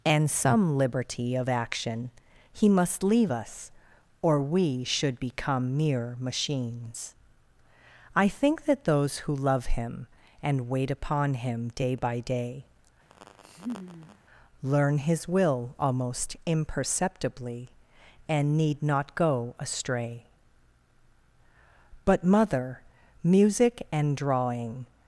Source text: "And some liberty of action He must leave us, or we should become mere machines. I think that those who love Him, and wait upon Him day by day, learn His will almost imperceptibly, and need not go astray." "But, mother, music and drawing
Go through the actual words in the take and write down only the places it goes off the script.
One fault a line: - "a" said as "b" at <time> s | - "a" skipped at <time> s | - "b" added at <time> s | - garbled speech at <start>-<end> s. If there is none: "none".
none